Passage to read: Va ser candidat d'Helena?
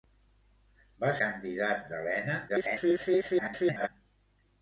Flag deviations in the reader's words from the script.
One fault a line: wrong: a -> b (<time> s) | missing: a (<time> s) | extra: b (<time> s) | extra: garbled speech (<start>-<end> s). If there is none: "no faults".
missing: ser (1.1 s)
extra: garbled speech (2.5-3.9 s)